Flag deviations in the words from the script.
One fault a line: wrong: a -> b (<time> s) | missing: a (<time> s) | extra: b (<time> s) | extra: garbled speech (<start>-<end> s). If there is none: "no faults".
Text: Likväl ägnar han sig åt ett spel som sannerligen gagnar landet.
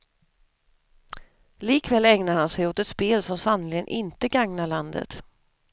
extra: inte (3.9 s)